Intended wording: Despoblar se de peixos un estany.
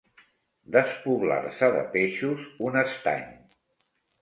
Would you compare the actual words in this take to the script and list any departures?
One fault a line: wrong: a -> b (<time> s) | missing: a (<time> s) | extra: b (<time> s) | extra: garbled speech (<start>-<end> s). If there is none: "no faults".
no faults